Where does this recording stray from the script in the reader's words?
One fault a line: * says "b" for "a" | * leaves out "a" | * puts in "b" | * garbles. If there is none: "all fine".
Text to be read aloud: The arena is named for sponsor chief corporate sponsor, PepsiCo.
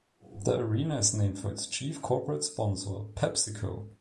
* says "its" for "sponsor"